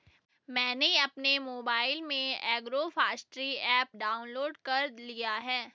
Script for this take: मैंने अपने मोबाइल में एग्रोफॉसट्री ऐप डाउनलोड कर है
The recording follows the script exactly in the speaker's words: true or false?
false